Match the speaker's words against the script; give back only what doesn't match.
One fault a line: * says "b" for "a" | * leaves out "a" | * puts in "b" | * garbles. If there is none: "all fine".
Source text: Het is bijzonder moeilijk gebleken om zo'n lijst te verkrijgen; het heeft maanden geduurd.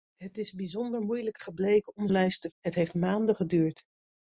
* leaves out "zo'n"
* leaves out "verkrijgen"